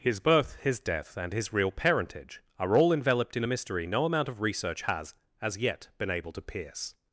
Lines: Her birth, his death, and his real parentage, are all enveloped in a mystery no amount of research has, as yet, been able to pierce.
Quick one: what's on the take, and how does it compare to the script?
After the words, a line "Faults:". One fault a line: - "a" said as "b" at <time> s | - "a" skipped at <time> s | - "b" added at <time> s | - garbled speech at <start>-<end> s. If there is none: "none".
His birth, his death, and his real parentage, are all enveloped in a mystery no amount of research has, as yet, been able to pierce.
Faults:
- "Her" said as "His" at 0.0 s